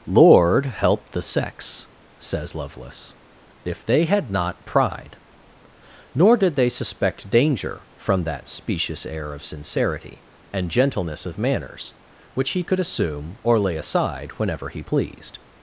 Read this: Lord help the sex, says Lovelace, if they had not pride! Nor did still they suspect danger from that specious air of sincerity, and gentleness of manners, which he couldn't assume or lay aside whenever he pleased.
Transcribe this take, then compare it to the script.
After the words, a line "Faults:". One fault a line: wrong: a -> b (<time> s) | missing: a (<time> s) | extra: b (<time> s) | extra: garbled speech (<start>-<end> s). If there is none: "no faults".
Lord help the sex, says Lovelace, if they had not pride! Nor did they suspect danger from that specious air of sincerity, and gentleness of manners, which he could assume or lay aside whenever he pleased.
Faults:
missing: still (6.5 s)
wrong: couldn't -> could (12.6 s)